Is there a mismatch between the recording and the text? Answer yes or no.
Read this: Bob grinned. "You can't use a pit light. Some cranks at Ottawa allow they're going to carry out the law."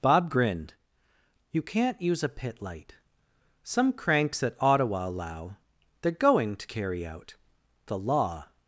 no